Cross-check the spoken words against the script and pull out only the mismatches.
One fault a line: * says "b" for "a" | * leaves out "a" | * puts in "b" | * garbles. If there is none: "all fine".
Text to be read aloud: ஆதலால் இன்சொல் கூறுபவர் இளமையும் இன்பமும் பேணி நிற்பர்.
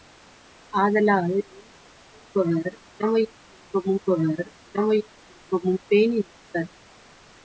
* puts in "கூறுபவர் இளமையும் இன்பமும்"